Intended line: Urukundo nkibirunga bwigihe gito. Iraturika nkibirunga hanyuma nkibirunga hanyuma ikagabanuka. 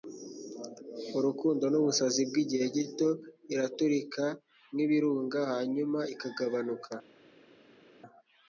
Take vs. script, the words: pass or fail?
fail